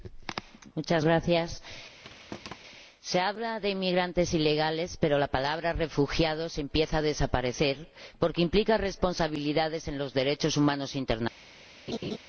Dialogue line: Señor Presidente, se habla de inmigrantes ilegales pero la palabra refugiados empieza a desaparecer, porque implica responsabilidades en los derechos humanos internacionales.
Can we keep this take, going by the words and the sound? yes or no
no